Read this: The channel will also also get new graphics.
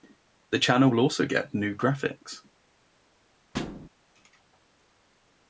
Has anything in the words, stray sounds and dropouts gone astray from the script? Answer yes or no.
yes